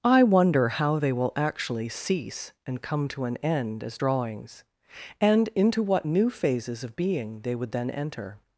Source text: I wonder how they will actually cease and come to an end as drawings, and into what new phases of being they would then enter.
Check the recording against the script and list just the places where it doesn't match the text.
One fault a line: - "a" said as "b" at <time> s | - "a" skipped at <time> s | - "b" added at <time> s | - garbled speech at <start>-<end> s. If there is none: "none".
none